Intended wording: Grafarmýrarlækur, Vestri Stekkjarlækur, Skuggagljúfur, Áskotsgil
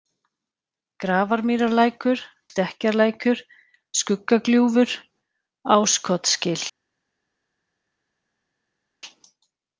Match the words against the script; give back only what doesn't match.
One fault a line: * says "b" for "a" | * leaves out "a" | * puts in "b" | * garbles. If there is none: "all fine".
* leaves out "Vestri"